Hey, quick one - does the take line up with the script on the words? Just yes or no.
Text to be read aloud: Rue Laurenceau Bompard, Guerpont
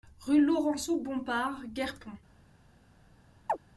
yes